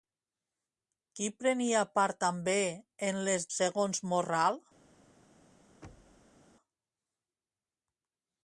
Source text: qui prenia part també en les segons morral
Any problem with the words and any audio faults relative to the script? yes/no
yes